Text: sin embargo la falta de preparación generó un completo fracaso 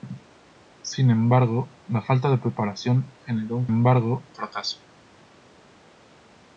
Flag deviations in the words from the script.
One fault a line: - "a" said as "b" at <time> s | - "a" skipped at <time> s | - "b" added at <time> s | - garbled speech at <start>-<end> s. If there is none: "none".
- "completo" said as "embargo" at 3.7 s